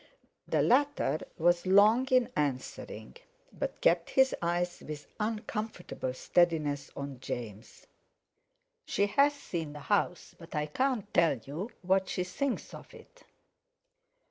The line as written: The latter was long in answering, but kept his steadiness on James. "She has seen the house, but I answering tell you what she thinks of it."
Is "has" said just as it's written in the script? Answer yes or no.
yes